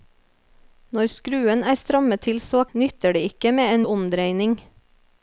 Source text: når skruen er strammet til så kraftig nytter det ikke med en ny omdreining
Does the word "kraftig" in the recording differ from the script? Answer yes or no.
yes